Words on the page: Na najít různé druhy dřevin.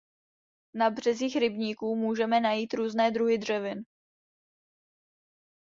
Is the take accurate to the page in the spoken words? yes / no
no